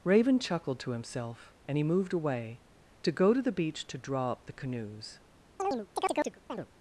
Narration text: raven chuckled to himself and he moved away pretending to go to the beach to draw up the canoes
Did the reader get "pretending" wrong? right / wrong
wrong